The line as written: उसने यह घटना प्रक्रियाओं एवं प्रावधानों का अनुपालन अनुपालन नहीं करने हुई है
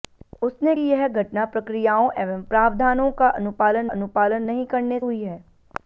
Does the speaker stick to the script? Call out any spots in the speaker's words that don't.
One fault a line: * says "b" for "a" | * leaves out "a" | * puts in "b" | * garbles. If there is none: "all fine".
all fine